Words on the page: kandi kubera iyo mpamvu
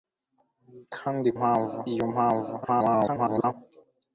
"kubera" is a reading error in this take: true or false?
true